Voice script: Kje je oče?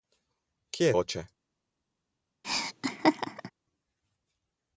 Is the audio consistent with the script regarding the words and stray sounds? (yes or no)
no